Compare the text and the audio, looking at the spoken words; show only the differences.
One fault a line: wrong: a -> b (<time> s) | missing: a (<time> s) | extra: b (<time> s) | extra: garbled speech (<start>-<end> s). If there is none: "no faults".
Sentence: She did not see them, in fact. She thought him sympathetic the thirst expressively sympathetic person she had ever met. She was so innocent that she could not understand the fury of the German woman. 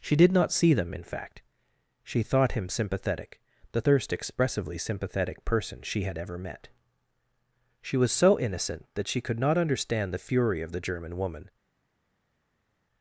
no faults